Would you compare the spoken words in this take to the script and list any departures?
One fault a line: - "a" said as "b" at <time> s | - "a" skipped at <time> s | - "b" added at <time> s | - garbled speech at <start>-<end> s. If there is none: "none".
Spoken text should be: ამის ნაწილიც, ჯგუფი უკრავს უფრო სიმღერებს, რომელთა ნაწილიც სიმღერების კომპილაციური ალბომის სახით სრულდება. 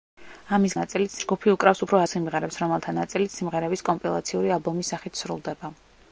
none